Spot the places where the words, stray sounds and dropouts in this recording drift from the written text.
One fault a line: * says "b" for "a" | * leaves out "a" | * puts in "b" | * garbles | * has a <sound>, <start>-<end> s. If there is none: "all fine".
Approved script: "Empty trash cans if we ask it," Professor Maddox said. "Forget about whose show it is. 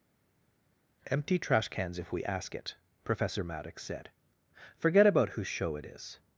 all fine